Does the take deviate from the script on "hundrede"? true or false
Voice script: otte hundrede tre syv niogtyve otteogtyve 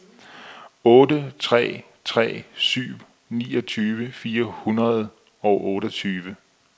true